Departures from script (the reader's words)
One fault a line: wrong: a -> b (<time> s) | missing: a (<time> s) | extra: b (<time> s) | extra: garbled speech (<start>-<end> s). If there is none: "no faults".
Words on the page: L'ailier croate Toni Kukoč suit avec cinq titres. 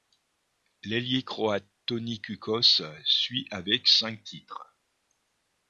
no faults